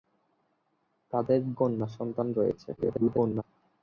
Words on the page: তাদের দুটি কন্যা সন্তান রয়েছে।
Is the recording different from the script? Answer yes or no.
yes